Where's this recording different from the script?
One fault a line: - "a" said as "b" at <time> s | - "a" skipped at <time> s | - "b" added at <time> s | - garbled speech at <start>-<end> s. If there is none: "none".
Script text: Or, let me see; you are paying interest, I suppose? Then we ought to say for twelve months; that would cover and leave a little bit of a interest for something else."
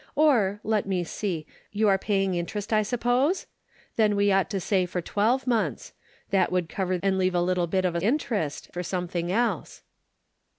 none